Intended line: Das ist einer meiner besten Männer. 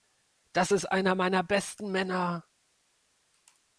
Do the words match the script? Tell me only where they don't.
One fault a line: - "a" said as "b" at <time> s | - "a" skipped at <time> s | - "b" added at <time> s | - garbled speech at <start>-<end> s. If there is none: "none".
none